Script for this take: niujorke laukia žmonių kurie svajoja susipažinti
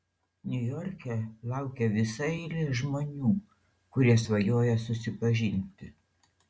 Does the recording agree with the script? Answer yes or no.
no